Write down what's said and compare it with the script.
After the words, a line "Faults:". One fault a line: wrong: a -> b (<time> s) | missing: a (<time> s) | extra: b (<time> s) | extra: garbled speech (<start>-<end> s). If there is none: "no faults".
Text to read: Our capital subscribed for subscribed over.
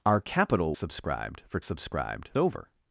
Our capital subscribed for subscribed over.
Faults:
no faults